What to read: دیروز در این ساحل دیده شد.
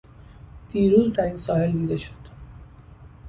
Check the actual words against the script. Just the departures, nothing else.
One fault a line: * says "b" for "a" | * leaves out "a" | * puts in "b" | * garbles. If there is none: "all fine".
all fine